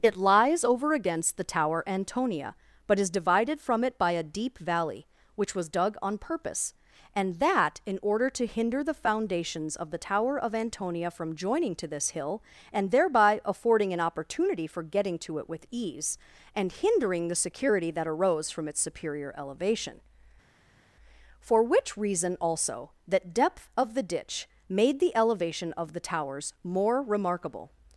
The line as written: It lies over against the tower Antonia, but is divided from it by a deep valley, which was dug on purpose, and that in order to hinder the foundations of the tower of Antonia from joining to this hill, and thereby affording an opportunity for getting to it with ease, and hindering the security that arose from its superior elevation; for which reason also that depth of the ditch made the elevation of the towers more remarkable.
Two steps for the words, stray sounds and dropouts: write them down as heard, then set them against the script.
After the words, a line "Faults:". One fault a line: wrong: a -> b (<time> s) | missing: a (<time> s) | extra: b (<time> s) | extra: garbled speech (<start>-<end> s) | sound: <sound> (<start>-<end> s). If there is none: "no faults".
It lies over against the tower Antonia, but is divided from it by a deep valley, which was dug on purpose, and that in order to hinder the foundations of the tower of Antonia from joining to this hill, and thereby affording an opportunity for getting to it with ease, and hindering the security that arose from its superior elevation; for which reason also that depth of the ditch made the elevation of the towers more remarkable.
Faults:
no faults